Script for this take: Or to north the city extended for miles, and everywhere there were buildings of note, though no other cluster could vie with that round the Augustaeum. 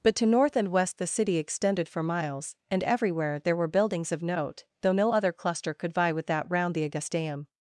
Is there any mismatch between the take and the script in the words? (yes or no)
yes